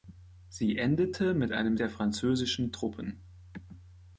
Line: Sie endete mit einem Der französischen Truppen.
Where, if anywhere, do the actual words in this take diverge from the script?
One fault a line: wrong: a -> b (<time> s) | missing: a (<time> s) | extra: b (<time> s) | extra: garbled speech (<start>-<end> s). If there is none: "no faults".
no faults